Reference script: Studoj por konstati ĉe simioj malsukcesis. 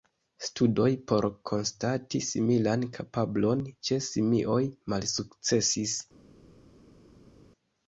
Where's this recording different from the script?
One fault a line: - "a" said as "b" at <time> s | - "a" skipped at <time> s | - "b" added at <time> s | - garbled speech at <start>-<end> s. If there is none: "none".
- "similan kapablon" added at 2.3 s